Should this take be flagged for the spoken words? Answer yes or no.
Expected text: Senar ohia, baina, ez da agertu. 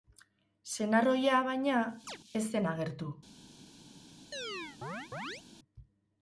yes